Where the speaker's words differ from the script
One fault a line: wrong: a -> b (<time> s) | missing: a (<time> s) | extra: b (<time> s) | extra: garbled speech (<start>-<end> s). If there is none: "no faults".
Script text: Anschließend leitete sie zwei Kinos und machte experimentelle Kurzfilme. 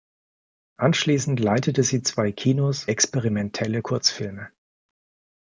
missing: und machte (2.9 s)